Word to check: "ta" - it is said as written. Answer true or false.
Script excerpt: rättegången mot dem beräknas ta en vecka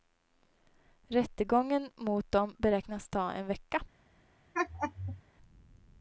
true